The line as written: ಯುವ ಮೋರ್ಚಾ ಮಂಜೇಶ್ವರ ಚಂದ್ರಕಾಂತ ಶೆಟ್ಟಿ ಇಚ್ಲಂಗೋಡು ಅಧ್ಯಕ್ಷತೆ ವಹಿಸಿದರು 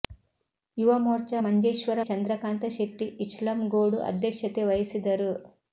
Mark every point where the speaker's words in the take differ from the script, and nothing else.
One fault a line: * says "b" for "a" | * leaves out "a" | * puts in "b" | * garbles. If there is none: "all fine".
all fine